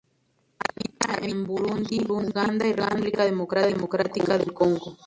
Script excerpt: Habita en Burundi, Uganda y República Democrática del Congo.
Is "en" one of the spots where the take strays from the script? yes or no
no